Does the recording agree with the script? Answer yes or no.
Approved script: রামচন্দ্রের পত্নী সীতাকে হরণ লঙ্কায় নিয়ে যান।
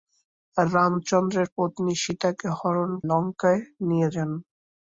yes